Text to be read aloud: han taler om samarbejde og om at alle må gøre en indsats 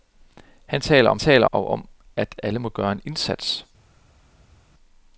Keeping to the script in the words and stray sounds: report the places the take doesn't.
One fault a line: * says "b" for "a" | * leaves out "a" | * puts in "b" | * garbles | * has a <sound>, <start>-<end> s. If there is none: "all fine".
* says "taler" for "samarbejde"